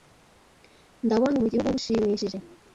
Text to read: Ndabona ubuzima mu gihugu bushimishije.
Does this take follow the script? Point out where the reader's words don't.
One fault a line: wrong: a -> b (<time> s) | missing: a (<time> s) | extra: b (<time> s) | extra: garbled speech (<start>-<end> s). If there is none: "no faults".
missing: ubuzima (1.4 s)